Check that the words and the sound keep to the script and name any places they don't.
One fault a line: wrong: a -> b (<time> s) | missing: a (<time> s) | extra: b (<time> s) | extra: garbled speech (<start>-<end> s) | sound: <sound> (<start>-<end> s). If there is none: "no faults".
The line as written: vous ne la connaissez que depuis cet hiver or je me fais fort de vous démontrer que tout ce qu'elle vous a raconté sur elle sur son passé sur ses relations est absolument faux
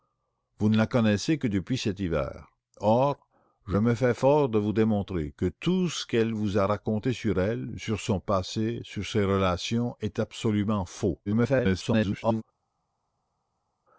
extra: garbled speech (11.3-12.4 s)